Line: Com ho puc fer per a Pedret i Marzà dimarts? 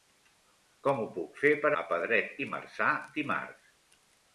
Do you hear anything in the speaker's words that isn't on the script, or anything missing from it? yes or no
no